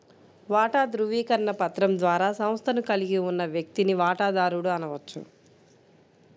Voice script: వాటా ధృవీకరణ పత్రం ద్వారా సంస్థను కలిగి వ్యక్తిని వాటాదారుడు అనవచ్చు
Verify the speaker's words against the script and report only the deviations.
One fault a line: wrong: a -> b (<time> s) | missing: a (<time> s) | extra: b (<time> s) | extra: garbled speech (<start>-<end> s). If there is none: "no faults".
extra: ఉన్న (3.3 s)